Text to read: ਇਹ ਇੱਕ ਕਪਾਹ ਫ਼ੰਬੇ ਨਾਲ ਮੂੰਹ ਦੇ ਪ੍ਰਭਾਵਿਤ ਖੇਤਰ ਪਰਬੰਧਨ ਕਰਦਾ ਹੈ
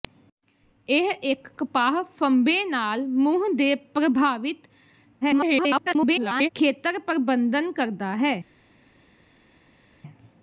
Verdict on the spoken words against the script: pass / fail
fail